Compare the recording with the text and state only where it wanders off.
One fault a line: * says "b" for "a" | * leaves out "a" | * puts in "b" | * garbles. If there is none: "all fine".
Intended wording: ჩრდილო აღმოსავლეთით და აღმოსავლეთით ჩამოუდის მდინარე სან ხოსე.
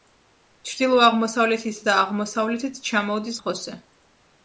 * leaves out "მდინარე სან"